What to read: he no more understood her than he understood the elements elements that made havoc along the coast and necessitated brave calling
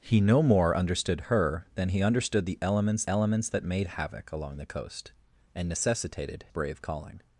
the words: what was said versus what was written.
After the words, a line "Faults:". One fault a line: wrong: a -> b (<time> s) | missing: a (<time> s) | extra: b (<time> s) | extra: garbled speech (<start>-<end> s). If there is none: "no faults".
he no more understood her than he understood the elements elements that made havoc along the coast and necessitated brave calling
Faults:
no faults